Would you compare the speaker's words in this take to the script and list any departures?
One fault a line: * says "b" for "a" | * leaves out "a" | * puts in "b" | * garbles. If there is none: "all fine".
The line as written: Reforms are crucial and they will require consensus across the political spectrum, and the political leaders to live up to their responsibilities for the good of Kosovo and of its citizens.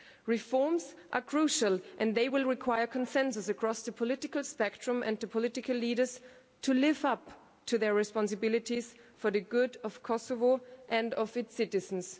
all fine